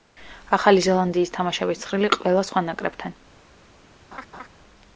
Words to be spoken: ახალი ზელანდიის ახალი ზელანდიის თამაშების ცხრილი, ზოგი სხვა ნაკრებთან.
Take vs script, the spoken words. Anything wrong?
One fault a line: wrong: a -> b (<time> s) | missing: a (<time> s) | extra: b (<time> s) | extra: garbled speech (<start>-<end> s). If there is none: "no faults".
missing: ახალი ზელანდიის (1.3 s)
wrong: ზოგი -> ყველა (2.2 s)